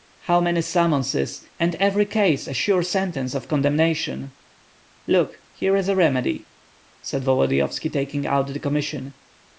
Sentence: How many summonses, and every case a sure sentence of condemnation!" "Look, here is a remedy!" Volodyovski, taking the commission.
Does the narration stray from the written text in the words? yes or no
yes